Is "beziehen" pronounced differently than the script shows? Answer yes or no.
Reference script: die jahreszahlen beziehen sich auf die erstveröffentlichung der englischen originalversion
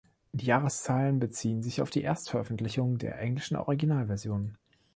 no